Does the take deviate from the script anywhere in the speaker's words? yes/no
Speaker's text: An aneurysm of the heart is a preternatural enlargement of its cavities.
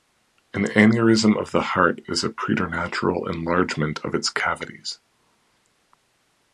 no